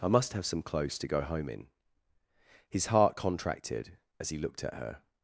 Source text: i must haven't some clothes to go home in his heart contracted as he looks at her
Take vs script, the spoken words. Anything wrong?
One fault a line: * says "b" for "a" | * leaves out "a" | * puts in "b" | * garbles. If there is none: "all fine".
* says "have" for "haven't"
* says "looked" for "looks"